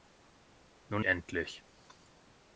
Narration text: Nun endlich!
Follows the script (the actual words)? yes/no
yes